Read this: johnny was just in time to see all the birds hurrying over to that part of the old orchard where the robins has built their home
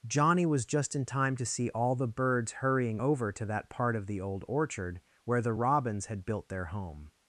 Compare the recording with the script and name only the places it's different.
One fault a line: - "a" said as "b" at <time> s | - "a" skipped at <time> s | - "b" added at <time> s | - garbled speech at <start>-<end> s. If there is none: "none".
- "has" said as "had" at 6.1 s